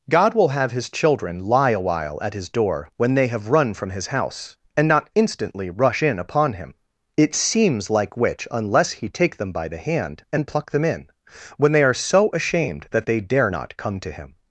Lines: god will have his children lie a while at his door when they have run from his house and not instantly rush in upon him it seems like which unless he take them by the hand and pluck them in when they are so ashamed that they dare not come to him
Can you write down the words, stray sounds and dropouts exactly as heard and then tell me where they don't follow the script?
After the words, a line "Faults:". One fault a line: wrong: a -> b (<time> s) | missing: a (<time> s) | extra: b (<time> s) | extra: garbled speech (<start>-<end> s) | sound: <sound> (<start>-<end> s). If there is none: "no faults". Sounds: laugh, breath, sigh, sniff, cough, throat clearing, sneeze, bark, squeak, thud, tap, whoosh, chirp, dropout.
god will have his children lie a while at his door when they have run from his house and not instantly rush in upon him it seems like which unless he take them by the hand and pluck them in when they are so ashamed that they dare not come to him
Faults:
no faults